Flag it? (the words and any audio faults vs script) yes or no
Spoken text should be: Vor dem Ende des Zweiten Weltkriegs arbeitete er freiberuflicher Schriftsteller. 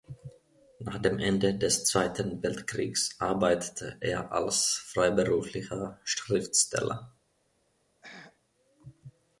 yes